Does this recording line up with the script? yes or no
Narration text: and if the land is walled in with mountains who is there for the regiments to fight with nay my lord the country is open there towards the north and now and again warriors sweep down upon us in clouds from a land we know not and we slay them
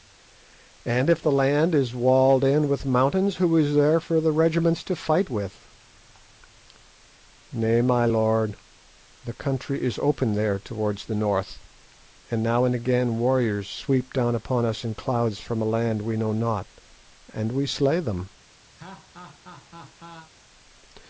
yes